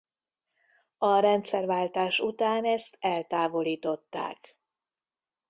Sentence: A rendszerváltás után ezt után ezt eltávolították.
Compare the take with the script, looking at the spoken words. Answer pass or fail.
fail